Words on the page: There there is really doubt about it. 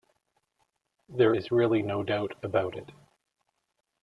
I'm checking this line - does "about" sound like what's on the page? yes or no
yes